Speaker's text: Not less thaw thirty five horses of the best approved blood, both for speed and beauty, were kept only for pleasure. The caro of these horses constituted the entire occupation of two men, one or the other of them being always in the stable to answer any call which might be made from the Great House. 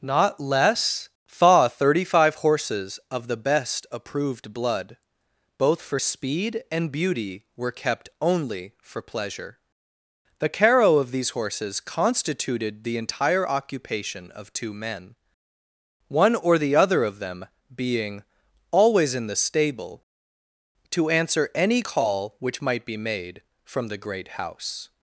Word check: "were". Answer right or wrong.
right